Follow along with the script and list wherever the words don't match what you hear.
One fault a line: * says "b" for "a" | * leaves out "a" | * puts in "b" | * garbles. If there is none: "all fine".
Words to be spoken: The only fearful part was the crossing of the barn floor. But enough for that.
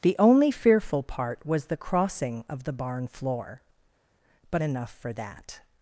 all fine